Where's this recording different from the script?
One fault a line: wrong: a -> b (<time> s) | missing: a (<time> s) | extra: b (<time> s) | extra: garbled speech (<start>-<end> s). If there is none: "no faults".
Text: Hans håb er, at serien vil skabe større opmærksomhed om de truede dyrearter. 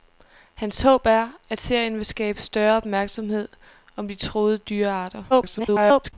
extra: garbled speech (5.3-6.1 s)